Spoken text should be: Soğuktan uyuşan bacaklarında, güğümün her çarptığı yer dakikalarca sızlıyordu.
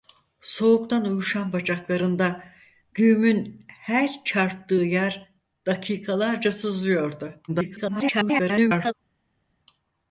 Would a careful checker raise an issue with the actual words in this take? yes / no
yes